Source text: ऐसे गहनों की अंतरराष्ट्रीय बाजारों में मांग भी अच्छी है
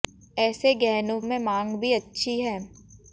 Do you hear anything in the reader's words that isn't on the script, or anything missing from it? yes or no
yes